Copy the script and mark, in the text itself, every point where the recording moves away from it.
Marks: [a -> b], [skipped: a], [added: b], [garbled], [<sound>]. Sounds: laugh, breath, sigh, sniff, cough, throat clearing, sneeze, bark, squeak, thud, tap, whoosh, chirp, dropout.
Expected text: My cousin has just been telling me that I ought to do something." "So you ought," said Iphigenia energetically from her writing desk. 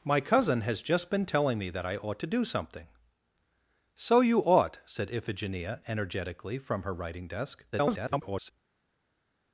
My cousin has just been telling me that I ought to do something." "So you ought," said Iphigenia energetically from her writing desk. [garbled]